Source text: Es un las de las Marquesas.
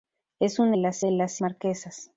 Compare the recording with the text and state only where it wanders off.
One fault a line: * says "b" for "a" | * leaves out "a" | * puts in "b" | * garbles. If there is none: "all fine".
all fine